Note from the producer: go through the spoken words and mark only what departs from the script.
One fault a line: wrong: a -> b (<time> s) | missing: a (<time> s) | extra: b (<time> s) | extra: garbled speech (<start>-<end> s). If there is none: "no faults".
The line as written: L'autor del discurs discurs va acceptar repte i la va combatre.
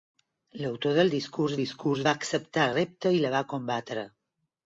no faults